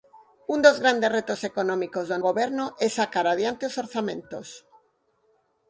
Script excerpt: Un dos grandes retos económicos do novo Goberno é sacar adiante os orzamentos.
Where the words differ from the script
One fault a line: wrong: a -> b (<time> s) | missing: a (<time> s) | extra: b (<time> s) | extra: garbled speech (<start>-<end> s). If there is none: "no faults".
missing: novo (2.2 s)